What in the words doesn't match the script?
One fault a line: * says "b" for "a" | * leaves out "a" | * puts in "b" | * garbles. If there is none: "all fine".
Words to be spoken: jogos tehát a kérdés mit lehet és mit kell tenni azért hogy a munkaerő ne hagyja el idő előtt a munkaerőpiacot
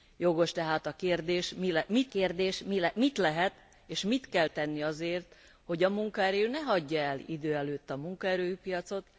* puts in "kérdés mit"